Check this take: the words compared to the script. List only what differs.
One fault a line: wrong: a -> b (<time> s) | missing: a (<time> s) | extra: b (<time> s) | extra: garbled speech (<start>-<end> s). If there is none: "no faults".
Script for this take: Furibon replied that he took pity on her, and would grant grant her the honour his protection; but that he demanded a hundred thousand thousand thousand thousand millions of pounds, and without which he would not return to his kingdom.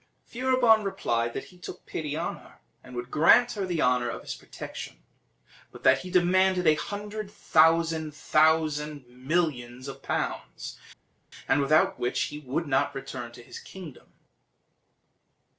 missing: grant (3.5 s)
extra: of (4.1 s)
missing: thousand thousand (9.0 s)